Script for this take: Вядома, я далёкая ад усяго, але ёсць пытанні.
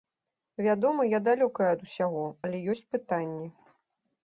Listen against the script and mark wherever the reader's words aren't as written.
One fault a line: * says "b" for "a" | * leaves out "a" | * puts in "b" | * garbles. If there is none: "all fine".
all fine